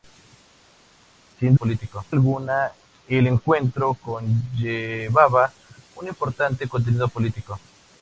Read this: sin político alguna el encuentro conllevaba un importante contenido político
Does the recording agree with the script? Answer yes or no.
yes